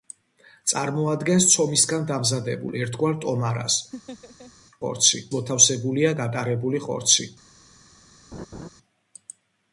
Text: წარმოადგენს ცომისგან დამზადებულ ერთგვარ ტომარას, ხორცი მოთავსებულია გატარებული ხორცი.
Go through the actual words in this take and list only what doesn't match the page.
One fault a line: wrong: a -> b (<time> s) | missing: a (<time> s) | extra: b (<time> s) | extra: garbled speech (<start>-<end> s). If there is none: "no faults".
no faults